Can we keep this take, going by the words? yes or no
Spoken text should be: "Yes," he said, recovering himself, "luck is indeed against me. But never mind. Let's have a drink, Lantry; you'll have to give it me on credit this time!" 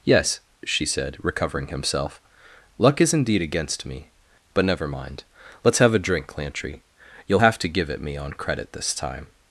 no